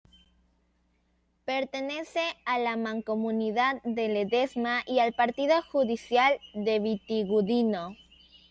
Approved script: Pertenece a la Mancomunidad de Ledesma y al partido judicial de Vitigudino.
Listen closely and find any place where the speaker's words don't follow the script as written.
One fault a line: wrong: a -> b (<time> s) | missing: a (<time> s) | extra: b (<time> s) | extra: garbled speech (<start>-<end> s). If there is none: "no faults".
no faults